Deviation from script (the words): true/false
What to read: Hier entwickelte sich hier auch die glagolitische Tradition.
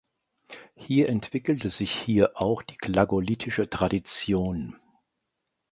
false